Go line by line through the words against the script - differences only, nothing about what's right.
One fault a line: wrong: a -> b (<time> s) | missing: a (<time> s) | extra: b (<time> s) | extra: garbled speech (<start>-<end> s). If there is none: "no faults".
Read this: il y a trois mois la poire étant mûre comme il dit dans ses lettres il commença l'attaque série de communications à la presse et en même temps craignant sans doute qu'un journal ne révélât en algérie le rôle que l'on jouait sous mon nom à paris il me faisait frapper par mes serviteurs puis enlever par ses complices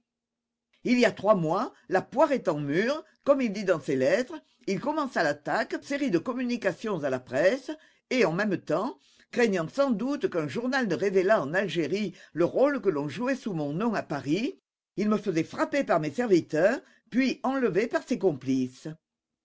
no faults